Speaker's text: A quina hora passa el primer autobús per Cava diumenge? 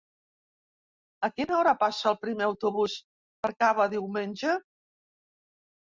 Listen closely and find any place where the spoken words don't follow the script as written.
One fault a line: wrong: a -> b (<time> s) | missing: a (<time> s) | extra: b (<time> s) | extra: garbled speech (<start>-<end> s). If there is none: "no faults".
no faults